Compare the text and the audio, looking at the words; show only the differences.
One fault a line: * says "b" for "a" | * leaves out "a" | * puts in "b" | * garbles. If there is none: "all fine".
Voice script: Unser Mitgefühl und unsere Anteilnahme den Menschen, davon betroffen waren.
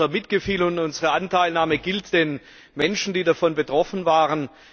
* puts in "gilt"
* puts in "die"